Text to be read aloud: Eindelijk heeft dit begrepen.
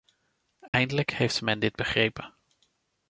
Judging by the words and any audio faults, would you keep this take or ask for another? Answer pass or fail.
fail